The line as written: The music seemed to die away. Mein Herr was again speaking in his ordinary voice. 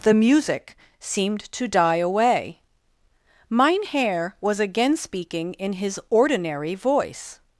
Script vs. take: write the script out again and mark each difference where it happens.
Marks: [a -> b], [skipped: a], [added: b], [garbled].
The music seemed to die away. Mein Herr was again speaking in his ordinary voice.